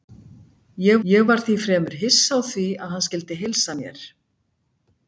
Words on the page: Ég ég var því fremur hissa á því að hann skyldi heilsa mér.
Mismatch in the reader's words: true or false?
false